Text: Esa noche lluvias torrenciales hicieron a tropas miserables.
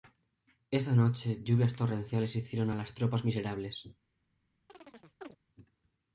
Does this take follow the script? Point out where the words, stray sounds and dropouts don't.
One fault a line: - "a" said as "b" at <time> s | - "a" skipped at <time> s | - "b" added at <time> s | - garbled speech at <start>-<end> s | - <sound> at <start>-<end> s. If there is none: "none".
- "las" added at 2.8 s
- chirp at 4.7-5.4 s